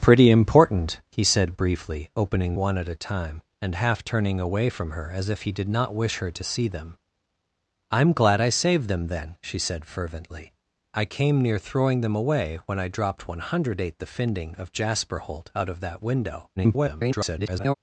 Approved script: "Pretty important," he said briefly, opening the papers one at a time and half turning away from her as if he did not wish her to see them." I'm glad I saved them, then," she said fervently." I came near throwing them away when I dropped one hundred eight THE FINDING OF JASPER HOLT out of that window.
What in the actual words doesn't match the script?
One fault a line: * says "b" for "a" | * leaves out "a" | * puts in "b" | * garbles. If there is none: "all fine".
* leaves out "the papers"
* garbles